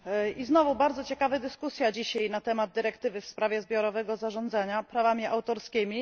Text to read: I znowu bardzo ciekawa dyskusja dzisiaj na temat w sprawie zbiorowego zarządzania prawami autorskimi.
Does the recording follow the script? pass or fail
fail